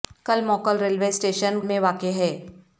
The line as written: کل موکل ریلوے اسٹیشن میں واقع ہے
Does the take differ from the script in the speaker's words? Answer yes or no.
no